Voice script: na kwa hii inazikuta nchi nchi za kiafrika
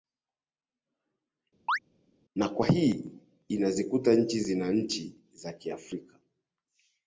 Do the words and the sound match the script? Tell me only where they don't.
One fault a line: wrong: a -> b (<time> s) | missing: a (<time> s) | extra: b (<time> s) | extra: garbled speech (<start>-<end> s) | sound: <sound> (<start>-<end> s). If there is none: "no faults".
sound: chirp (1.7-1.8 s)
extra: zina (4.4 s)